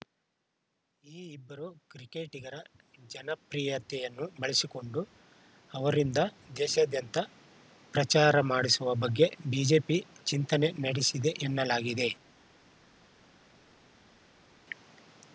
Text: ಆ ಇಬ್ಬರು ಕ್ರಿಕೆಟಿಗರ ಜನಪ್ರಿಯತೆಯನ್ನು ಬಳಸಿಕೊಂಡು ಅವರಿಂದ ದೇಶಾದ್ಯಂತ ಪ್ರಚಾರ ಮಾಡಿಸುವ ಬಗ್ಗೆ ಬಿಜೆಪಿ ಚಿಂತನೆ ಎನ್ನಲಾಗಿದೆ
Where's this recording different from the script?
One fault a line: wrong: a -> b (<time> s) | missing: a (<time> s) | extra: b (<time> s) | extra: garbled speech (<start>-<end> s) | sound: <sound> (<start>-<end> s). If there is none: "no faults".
wrong: ಆ -> ಈ (1.0 s)
extra: ನಡೆಸಿದೆ (10.9 s)